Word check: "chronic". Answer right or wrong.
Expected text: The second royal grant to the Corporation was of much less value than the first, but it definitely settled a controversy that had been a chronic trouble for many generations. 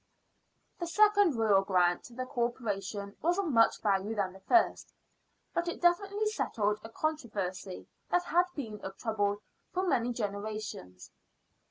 wrong